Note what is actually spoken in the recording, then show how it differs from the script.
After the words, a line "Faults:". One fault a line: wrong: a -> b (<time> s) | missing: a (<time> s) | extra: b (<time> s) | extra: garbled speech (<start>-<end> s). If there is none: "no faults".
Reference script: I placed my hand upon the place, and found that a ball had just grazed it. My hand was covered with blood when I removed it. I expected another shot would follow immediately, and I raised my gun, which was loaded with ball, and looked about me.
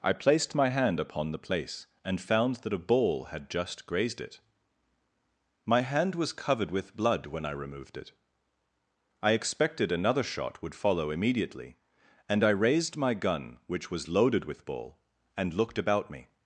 I placed my hand upon the place, and found that a ball had just grazed it. My hand was covered with blood when I removed it. I expected another shot would follow immediately, and I raised my gun, which was loaded with ball, and looked about me.
Faults:
no faults